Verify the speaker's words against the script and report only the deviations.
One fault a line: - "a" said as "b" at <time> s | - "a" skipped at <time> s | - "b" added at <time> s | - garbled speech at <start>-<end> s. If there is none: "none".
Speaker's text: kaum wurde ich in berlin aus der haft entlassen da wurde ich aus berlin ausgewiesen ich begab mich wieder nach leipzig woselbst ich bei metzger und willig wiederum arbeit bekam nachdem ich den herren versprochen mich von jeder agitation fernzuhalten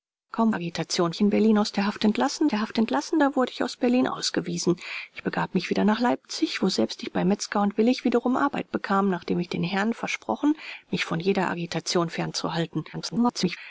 - "wurde" said as "agitation" at 0.5 s
- "der haft entlassen" added at 2.5 s
- garbled speech at 12.9-13.6 s